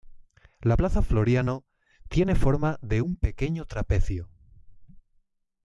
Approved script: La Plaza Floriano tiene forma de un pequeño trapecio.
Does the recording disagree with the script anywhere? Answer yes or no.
no